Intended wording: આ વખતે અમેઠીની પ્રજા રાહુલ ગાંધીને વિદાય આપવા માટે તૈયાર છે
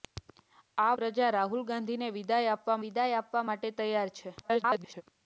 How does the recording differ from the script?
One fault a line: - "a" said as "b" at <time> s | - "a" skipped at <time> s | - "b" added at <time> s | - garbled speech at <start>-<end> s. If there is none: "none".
- "વખતે અમેઠીની" skipped at 0.9 s
- "વિદાય આપવા" added at 2.8 s
- garbled speech at 4.4-5.0 s